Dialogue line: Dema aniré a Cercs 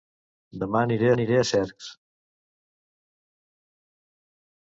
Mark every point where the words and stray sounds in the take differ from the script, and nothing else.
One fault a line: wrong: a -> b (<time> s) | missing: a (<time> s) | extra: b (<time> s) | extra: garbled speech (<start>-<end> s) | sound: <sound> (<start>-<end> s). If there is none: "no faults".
extra: aniré (1.2 s)